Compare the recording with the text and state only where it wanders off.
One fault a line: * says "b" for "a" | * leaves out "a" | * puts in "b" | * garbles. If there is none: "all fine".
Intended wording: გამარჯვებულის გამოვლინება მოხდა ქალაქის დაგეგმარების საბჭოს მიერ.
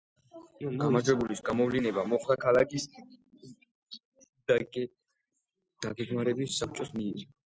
all fine